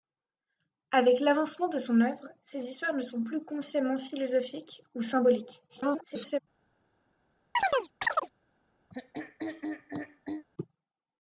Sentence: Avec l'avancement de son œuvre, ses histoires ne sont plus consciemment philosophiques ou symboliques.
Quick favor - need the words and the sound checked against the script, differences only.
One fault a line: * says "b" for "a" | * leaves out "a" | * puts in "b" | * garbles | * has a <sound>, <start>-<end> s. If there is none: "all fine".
* garbles
* has a chirp, 7.5-8.3 s
* has a throat clearing, 8.9-10.4 s